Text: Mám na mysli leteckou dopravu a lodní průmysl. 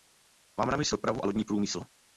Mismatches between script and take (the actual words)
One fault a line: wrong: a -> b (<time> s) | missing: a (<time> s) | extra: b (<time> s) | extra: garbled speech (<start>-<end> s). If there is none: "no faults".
missing: leteckou (0.9 s)